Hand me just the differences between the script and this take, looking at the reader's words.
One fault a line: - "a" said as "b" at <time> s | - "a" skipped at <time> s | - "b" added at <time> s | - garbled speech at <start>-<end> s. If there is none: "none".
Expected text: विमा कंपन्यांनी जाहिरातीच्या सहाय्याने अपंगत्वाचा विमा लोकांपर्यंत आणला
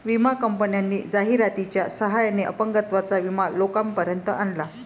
none